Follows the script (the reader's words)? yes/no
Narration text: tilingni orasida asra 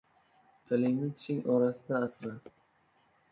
no